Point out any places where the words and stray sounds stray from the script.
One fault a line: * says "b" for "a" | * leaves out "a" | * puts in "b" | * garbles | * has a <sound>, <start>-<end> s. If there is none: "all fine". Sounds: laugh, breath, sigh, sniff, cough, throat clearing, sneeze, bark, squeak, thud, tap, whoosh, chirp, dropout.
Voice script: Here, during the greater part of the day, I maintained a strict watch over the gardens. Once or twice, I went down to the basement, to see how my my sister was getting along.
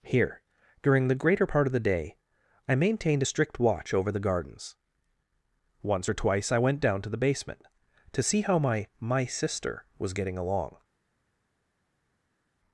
all fine